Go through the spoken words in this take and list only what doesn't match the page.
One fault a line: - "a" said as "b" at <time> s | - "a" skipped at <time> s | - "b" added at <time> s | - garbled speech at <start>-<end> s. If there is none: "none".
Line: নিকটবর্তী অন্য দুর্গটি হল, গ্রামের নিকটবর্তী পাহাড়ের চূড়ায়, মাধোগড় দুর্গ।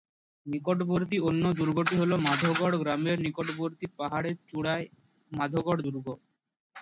- "মাধোগড়" added at 2.3 s